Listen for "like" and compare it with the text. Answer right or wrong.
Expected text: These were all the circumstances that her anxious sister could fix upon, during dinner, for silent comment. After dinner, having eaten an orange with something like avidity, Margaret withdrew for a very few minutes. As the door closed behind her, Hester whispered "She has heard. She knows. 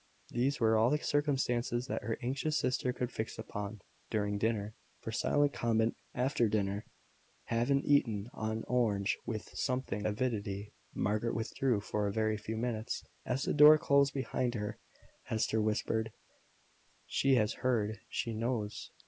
wrong